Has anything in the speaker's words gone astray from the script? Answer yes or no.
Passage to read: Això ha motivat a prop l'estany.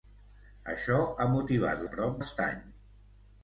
no